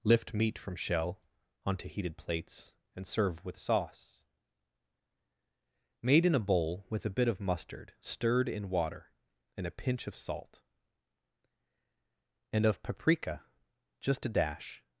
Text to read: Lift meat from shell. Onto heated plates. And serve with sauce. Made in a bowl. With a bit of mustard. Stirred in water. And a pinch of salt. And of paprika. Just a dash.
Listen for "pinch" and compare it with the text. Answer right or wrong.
right